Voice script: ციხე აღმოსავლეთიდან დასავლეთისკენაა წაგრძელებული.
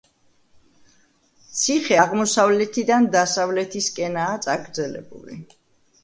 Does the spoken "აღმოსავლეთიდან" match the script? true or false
true